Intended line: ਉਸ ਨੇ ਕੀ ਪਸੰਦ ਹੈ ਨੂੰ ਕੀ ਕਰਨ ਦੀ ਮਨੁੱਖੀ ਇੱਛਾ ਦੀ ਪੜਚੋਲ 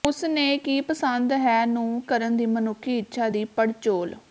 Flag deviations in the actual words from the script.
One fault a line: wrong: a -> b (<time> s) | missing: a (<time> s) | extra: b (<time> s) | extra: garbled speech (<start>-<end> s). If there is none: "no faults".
missing: ਕੀ (2.0 s)